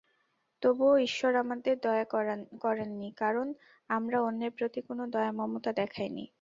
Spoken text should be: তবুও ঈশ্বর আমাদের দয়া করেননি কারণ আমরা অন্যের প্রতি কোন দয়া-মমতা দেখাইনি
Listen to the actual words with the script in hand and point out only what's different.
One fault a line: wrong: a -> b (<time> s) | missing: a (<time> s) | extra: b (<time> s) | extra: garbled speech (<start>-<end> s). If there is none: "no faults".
no faults